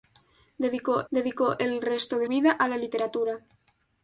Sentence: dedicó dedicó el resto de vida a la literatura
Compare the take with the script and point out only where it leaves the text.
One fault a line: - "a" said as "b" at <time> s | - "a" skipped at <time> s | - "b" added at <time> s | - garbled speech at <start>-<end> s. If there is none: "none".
none